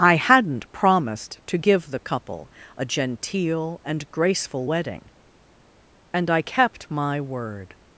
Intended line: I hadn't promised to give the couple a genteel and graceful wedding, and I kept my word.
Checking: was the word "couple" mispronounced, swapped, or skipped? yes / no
no